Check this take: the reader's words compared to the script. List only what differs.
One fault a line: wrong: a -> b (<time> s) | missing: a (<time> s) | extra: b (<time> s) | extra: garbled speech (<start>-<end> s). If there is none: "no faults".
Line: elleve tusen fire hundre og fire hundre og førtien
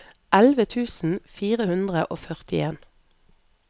missing: fire hundre og (2.2 s)